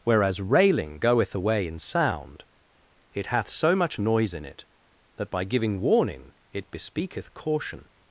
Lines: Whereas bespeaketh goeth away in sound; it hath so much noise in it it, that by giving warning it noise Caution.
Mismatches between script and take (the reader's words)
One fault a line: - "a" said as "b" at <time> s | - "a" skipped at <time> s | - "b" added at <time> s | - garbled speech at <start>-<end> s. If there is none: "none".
- "bespeaketh" said as "railing" at 0.4 s
- "it" skipped at 4.7 s
- "noise" said as "bespeaketh" at 6.7 s